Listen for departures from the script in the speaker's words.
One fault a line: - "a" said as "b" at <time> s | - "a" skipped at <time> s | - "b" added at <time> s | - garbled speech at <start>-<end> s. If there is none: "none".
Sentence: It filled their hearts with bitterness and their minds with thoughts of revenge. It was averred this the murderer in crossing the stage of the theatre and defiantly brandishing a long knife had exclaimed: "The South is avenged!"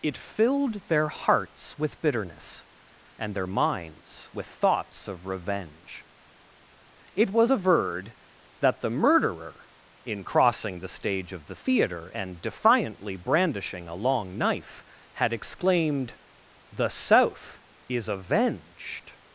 - "this" said as "that" at 8.6 s